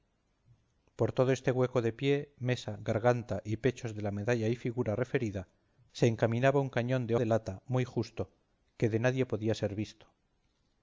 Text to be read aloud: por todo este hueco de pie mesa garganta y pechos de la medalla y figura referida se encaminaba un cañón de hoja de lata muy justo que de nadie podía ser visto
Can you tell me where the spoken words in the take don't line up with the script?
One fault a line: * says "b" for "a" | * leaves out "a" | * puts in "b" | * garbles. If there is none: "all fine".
* leaves out "hoja"